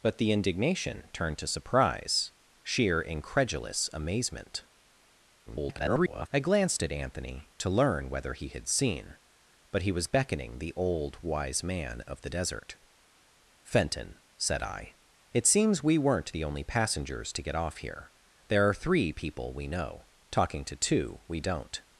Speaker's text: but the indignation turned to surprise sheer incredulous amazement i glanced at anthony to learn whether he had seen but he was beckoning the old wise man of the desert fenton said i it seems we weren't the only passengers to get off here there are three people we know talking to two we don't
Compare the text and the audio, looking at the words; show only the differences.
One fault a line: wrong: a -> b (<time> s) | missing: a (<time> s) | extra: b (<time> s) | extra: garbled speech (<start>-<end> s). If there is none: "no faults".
extra: garbled speech (5.5-6.3 s)